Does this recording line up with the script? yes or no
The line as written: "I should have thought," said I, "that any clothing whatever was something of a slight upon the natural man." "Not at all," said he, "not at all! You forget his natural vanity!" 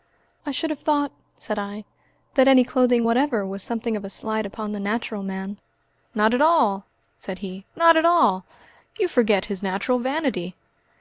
yes